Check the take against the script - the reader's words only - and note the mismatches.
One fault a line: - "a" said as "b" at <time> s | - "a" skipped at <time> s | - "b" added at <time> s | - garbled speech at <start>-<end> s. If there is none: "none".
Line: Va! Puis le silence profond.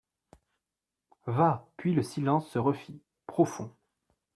- "se refit" added at 2.5 s